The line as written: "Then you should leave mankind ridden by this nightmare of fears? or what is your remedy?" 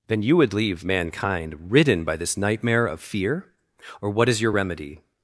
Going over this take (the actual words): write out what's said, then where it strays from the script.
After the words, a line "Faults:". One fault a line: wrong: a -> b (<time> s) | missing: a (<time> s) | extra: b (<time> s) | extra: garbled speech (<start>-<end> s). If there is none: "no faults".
"Then you would leave mankind ridden by this nightmare of fear? or what is your remedy?"
Faults:
wrong: should -> would (0.4 s)
wrong: fears -> fear (3.0 s)